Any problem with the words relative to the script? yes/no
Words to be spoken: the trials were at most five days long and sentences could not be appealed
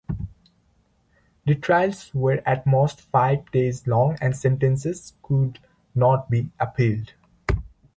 no